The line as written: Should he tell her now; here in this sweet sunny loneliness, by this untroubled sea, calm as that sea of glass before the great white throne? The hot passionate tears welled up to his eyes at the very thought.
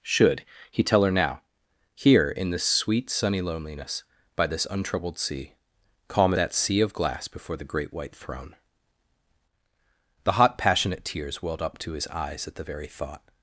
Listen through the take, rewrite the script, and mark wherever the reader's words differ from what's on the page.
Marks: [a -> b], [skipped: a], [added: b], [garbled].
Should he tell her now; here in this sweet sunny loneliness, by this untroubled sea, calm [skipped: as] that sea of glass before the great white throne? The hot passionate tears welled up to his eyes at the very thought.